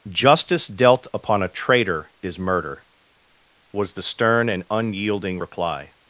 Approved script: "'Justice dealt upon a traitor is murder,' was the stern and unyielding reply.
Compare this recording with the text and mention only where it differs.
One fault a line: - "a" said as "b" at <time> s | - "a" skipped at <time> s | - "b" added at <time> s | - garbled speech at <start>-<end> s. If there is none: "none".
none